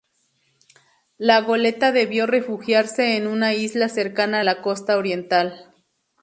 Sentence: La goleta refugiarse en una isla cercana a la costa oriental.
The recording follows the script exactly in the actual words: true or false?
false